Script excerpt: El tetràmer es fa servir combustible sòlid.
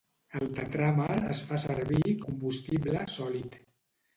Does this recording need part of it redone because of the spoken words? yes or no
no